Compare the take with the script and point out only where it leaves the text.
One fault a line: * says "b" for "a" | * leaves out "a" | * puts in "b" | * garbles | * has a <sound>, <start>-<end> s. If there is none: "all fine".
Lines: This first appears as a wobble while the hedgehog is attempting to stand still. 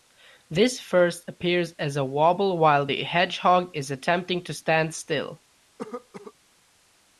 * has a cough, 5.8-6.3 s